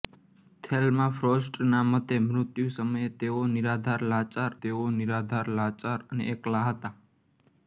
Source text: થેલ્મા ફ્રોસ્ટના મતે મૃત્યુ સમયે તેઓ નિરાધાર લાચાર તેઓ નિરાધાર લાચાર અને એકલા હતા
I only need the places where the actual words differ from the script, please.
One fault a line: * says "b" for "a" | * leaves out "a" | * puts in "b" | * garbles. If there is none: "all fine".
all fine